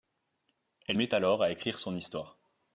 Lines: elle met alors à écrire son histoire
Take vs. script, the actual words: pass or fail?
pass